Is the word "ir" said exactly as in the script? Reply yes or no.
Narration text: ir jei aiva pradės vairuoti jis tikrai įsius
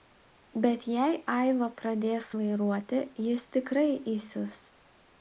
no